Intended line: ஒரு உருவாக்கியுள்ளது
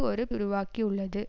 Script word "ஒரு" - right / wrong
right